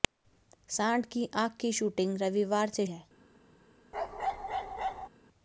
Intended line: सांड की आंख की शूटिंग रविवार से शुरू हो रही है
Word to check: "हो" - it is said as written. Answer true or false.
false